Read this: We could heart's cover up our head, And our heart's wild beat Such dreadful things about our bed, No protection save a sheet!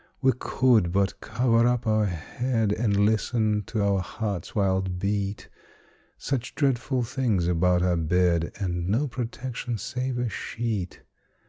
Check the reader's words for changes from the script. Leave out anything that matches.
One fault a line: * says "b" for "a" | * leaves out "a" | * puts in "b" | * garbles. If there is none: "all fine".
* says "but" for "heart's"
* puts in "listen to"
* puts in "And"